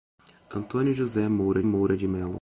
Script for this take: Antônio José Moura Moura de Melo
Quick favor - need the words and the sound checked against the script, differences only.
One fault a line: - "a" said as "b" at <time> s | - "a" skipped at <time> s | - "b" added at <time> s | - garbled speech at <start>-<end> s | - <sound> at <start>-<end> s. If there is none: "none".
none